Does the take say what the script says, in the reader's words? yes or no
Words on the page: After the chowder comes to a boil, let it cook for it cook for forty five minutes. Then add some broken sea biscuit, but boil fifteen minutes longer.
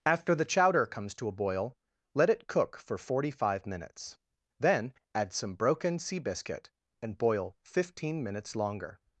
no